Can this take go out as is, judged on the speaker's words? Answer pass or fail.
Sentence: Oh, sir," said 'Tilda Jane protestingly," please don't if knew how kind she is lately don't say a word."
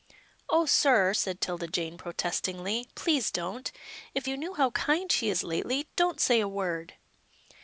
fail